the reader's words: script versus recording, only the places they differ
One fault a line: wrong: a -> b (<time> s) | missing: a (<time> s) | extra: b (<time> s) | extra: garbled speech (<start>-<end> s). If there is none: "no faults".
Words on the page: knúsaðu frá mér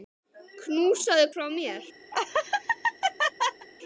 no faults